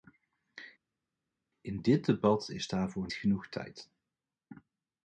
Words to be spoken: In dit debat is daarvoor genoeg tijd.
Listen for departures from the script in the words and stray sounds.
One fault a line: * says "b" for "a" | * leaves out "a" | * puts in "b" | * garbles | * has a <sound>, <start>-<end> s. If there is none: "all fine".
all fine